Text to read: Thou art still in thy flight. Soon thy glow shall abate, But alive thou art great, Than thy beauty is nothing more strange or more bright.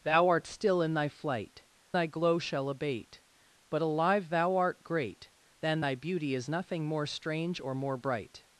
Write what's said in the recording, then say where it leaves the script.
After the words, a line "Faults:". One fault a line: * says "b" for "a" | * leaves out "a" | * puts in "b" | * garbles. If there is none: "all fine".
Thou art still in thy flight. Thy glow shall abate, But alive thou art great, Than thy beauty is nothing more strange or more bright.
Faults:
* leaves out "Soon"